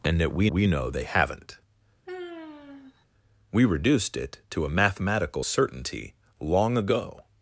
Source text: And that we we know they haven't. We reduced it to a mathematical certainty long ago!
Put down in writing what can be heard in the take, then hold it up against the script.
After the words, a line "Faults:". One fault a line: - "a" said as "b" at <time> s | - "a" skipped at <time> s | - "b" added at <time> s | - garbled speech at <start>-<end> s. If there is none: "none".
And that we we know they haven't. We reduced it to a mathematical certainty long ago!
Faults:
none